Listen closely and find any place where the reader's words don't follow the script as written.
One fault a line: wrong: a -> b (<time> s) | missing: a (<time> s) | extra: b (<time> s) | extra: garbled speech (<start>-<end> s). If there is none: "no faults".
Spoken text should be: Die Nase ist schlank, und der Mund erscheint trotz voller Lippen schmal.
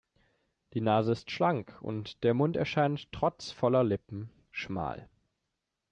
no faults